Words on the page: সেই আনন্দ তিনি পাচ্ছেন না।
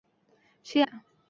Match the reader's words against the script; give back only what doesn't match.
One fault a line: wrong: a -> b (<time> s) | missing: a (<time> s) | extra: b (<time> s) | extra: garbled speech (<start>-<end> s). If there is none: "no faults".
missing: আনন্দ তিনি পাচ্ছেন (0.8 s)